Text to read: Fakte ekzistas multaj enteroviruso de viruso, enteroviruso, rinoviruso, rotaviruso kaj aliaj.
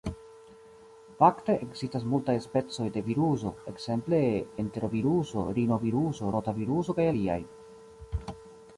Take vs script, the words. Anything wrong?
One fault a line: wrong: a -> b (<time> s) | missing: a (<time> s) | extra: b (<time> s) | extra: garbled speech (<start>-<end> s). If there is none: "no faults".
wrong: enteroviruso -> specoj (2.5 s)
extra: ekzemple (3.7 s)